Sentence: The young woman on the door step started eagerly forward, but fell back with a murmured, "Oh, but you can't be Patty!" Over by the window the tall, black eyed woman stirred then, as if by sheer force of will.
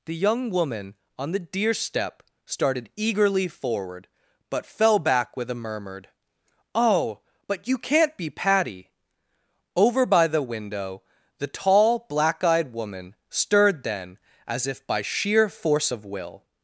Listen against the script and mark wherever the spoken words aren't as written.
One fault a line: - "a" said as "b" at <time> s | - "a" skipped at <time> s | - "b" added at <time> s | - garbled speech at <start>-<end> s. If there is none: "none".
- "door" said as "deer" at 1.4 s